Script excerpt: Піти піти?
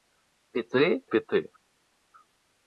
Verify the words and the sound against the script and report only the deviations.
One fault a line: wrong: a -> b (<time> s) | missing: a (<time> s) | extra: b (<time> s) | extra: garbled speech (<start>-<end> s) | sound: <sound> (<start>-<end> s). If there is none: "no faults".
no faults